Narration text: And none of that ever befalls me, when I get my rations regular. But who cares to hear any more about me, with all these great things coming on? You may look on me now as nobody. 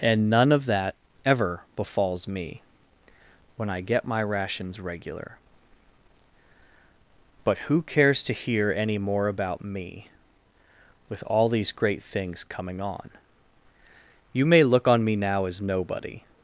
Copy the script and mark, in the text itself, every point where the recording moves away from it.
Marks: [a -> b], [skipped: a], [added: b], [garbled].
And none of that ever befalls me, when I get my rations regular. But who cares to hear any more about me, with all these great things coming on? You may look on me now as nobody.